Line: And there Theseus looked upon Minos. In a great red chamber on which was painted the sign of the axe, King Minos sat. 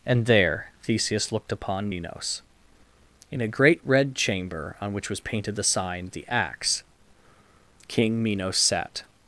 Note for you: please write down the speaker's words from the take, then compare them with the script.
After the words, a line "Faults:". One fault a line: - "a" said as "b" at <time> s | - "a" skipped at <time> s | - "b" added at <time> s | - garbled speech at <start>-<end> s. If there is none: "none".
And there Theseus looked upon Minos. In a great red chamber on which was painted the sign the axe, King Minos sat.
Faults:
- "of" skipped at 6.1 s